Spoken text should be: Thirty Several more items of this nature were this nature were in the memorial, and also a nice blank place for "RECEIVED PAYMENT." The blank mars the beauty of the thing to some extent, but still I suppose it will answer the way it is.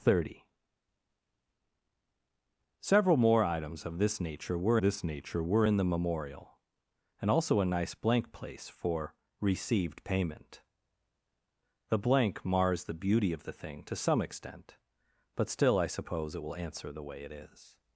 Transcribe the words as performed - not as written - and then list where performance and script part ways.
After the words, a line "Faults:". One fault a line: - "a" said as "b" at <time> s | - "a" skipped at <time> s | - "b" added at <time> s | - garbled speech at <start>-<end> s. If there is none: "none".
Thirty Several more items of this nature were this nature were in the memorial, and also a nice blank place for "RECEIVED PAYMENT." The blank mars the beauty of the thing to some extent, but still I suppose it will answer the way it is.
Faults:
none